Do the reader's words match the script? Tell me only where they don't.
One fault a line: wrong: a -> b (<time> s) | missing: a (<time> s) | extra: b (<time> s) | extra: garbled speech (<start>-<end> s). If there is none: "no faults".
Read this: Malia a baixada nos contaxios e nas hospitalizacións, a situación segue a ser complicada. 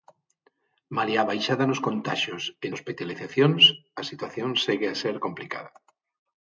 missing: nas (2.7 s)